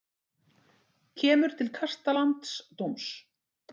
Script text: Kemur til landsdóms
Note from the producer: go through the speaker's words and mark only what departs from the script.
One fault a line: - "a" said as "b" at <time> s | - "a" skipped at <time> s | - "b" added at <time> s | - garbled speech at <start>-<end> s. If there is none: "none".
- "kasta" added at 1.8 s